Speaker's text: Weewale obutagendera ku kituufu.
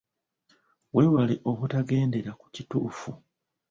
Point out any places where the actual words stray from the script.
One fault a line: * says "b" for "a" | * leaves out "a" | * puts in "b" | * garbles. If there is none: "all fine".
all fine